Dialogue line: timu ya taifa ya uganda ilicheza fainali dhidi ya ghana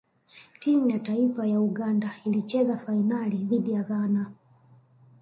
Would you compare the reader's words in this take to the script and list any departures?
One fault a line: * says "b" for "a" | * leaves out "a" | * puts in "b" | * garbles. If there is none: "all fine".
all fine